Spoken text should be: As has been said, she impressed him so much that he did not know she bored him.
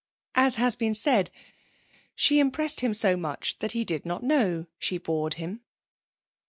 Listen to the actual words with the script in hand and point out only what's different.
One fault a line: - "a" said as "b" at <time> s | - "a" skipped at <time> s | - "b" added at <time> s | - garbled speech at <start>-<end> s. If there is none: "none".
none